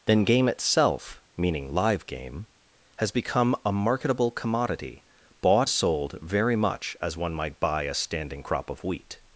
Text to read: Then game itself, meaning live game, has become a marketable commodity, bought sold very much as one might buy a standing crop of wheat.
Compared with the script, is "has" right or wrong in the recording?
right